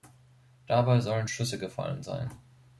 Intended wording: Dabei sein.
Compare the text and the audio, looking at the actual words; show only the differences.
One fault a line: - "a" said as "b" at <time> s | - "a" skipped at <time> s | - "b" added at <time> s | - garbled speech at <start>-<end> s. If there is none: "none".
- "sollen Schüsse gefallen" added at 1.0 s